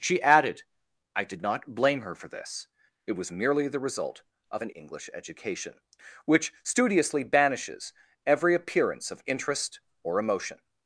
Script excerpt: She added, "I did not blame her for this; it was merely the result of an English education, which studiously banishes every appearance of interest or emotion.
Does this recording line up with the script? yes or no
yes